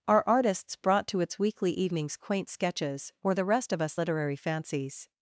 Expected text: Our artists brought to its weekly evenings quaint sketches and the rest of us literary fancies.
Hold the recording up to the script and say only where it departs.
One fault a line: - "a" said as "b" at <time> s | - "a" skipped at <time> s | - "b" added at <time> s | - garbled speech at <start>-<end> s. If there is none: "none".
- "and" said as "or" at 3.2 s